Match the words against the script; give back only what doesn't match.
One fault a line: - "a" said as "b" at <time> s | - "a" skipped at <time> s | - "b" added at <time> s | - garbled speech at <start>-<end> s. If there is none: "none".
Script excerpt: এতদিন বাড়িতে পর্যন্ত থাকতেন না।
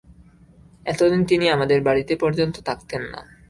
- "তিনি আমাদের" added at 1.2 s